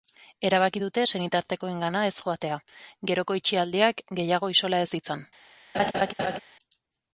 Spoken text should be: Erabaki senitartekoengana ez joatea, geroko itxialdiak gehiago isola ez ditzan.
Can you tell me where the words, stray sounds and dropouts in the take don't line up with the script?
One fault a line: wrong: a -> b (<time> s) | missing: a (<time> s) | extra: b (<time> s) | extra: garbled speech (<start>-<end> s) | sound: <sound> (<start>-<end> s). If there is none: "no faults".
extra: dute (0.8 s)
sound: laugh (5.7-6.4 s)